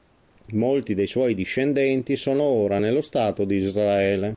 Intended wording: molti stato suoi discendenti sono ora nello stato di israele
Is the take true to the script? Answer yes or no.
no